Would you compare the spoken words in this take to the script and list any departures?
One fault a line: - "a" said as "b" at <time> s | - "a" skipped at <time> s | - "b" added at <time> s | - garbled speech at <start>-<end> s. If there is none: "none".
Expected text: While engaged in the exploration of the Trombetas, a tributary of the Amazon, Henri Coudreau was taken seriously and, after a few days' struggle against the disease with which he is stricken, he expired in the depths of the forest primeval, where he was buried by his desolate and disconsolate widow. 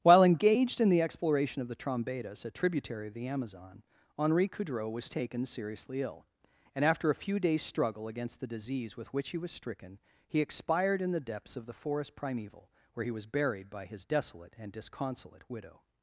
- "ill" added at 6.0 s
- "is" said as "was" at 9.4 s